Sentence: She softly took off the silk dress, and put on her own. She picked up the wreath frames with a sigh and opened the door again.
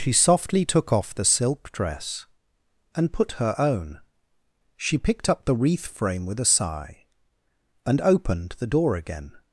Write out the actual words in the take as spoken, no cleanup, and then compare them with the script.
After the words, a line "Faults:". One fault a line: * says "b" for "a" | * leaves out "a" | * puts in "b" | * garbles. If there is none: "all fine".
She softly took off the silk dress, and put her own. She picked up the wreath frame with a sigh and opened the door again.
Faults:
* leaves out "on"
* says "frame" for "frames"